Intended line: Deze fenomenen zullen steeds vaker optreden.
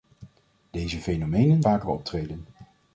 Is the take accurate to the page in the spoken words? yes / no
no